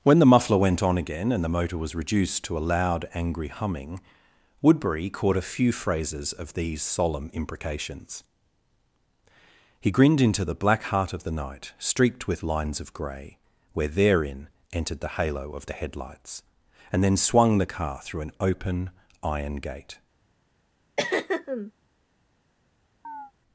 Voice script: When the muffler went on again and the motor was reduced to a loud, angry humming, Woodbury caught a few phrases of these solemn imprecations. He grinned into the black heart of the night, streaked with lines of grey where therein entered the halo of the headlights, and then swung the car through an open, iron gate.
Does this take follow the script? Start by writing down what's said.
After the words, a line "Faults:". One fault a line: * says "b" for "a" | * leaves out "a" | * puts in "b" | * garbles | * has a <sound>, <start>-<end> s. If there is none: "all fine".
When the muffler went on again and the motor was reduced to a loud, angry humming, Woodbury caught a few phrases of these solemn imprecations. He grinned into the black heart of the night, streaked with lines of grey where therein entered the halo of the headlights, and then swung the car through an open, iron gate.
Faults:
* has a throat clearing, 21.0-21.7 s
* has a chirp, 23.0-23.3 s